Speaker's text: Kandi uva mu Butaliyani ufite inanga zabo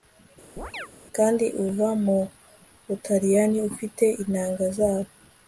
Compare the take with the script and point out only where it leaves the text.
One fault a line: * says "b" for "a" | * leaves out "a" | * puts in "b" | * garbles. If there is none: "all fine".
all fine